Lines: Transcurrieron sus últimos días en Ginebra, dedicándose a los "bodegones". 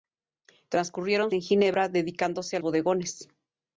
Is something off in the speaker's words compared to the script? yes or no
yes